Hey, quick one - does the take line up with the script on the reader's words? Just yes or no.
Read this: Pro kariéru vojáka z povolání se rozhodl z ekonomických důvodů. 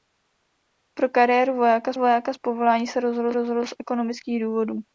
no